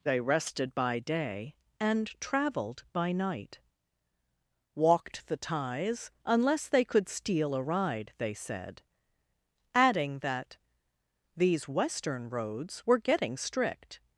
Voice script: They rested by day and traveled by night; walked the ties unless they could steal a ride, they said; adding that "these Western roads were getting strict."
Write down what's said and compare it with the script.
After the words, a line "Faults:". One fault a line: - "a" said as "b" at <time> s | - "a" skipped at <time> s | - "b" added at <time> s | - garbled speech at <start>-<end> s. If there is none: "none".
They rested by day and traveled by night; walked the ties unless they could steal a ride, they said; adding that "these Western roads were getting strict."
Faults:
none